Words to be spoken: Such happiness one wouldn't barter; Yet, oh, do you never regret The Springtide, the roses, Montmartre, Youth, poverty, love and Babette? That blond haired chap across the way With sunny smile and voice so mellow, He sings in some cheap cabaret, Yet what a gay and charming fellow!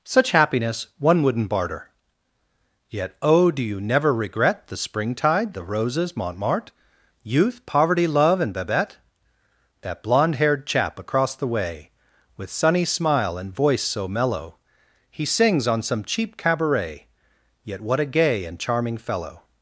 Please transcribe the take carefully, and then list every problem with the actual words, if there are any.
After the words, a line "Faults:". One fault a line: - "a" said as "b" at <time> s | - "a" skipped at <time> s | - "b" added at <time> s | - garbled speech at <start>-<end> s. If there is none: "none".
Such happiness one wouldn't barter; Yet, oh, do you never regret The Springtide, the roses, Montmartre, Youth, poverty, love and Babette? That blond haired chap across the way With sunny smile and voice so mellow, He sings on some cheap cabaret, Yet what a gay and charming fellow!
Faults:
- "in" said as "on" at 15.7 s